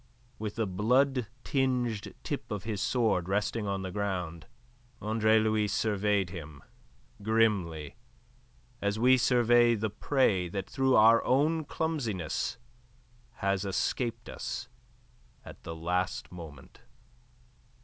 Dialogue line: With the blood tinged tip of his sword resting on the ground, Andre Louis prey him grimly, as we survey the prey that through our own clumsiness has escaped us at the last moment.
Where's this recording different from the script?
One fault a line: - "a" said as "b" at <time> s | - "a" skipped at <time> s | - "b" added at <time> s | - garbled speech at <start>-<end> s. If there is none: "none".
- "prey" said as "surveyed" at 5.7 s